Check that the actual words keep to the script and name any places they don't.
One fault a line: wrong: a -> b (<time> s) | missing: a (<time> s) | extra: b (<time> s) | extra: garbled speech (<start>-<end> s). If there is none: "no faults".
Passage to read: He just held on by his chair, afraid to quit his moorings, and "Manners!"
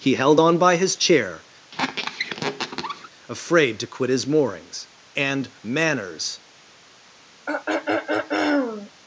missing: just (0.1 s)